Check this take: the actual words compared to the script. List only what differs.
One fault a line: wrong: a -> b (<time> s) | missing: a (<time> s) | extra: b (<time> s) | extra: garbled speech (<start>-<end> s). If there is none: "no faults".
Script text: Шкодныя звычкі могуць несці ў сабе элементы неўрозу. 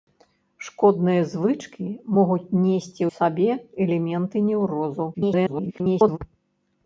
missing: ў (3.0 s)
extra: garbled speech (5.1-6.2 s)